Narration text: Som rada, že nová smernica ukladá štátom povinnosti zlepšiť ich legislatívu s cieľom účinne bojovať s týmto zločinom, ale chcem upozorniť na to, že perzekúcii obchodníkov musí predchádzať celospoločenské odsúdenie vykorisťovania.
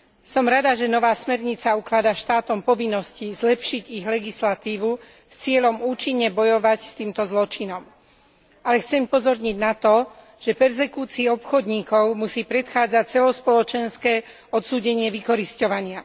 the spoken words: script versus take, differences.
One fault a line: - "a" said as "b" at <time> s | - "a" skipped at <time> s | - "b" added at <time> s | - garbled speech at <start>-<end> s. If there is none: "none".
none